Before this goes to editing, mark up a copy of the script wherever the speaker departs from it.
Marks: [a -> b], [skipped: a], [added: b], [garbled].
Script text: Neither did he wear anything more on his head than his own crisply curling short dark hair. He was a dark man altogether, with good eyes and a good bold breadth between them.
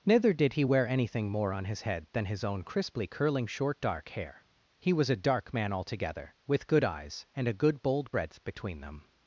Neither did he wear anything more on his head than his own crisply curling short dark hair. He was a dark man altogether, with good eyes and a good bold breadth between them.